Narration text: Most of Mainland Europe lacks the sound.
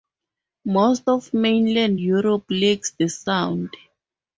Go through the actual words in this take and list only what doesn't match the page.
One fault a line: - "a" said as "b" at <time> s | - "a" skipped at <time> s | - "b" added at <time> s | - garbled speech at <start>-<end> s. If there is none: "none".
none